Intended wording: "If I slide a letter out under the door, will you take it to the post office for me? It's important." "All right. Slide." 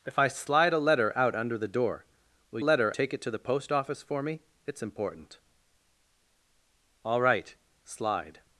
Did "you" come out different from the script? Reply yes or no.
yes